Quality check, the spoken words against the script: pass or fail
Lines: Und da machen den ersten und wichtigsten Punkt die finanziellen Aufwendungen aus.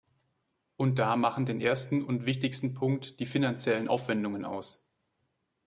pass